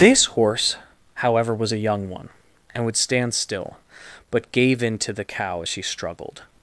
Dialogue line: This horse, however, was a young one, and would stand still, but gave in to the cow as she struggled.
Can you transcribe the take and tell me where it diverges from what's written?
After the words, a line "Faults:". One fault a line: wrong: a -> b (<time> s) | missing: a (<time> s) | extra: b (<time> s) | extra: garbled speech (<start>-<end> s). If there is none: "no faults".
This horse, however, was a young one, and would stand still, but gave in to the cow as she struggled.
Faults:
no faults